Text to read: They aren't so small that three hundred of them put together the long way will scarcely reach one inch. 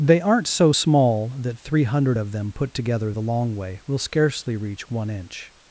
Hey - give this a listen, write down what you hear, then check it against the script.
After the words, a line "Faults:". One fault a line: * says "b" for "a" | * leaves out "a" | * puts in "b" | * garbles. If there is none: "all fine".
They aren't so small that three hundred of them put together the long way will scarcely reach one inch.
Faults:
all fine